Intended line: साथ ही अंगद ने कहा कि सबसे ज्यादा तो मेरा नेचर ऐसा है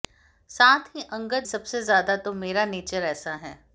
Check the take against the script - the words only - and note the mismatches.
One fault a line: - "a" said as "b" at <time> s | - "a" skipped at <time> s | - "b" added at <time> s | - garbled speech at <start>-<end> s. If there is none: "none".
- "ने कहा कि" skipped at 1.5 s